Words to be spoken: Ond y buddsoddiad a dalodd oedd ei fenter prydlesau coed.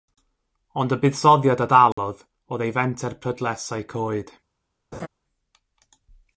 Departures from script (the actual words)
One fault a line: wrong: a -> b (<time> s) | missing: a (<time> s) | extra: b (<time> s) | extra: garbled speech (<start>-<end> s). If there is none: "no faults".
no faults